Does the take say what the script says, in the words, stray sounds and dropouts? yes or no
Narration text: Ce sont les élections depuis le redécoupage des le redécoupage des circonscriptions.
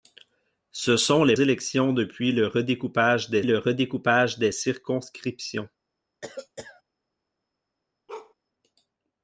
no